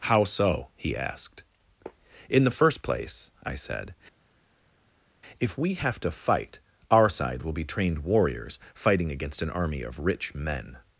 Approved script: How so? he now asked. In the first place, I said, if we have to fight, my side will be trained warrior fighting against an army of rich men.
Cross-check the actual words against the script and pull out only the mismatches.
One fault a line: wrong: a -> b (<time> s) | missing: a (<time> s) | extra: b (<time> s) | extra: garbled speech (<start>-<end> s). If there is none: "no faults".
missing: now (0.9 s)
wrong: my -> our (6.9 s)
wrong: warrior -> warriors (8.0 s)